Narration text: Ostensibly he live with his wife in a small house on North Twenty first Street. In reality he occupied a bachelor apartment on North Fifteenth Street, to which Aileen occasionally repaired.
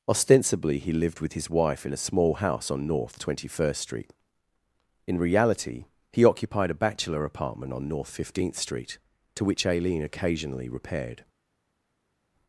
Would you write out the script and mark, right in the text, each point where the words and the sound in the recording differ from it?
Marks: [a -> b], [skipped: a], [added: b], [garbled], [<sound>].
Ostensibly he [live -> lived] with his wife in a small house on North Twenty first Street. In reality he occupied a bachelor apartment on North Fifteenth Street, to which Aileen occasionally repaired.